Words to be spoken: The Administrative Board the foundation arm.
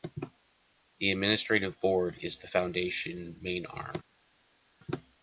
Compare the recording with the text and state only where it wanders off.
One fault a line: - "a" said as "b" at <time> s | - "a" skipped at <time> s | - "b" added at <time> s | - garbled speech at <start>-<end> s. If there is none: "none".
- "is" added at 2.2 s
- "main" added at 3.4 s